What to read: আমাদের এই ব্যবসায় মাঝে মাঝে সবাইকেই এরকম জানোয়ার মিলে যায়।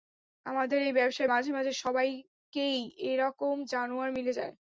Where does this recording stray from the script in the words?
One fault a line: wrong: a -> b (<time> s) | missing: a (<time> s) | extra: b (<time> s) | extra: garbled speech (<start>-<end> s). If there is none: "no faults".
no faults